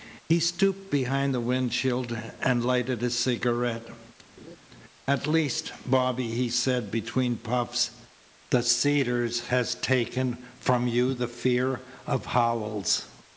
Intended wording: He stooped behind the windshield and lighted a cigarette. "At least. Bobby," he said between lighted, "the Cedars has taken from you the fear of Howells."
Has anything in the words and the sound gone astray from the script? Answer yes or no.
yes